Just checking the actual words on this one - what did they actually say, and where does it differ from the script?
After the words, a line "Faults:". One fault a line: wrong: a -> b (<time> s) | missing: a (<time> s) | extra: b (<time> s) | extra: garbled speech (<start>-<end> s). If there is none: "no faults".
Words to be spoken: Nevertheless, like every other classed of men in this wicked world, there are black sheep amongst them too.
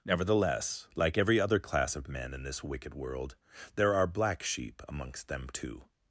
Nevertheless, like every other class of men in this wicked world, there are black sheep amongst them too.
Faults:
wrong: classed -> class (1.6 s)